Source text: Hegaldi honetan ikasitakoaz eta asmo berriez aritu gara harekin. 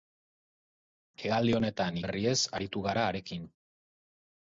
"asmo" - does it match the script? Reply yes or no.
no